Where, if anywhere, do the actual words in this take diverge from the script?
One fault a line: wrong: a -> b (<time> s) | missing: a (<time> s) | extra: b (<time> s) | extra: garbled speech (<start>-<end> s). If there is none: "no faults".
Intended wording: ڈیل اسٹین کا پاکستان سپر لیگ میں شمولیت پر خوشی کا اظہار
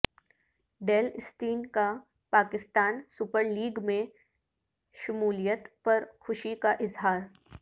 no faults